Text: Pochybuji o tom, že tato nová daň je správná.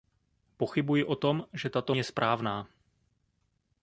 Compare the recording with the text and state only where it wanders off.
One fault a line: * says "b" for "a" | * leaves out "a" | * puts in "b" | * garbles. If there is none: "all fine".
* leaves out "nová daň"